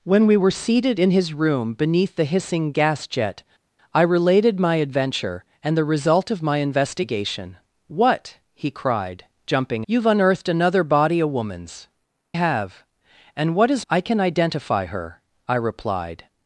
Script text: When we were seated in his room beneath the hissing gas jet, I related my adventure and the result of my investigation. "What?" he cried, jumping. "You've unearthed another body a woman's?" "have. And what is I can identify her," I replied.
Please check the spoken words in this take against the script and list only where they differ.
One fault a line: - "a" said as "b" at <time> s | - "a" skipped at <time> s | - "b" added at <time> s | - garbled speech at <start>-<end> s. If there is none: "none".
none